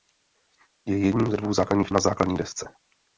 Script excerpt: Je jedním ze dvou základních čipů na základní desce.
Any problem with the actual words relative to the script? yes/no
yes